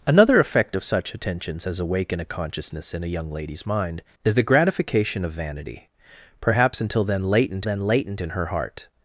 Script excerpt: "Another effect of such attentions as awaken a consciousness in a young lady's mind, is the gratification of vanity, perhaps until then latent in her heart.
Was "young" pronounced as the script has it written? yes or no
yes